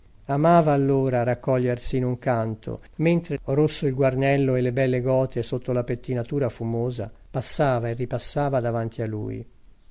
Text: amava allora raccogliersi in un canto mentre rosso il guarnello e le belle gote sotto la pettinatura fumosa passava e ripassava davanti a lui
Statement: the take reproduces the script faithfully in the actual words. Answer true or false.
true